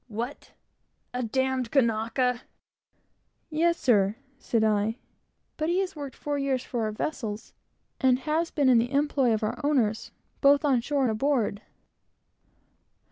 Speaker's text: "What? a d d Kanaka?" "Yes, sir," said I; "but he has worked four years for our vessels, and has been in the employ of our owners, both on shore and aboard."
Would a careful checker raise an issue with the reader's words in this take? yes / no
no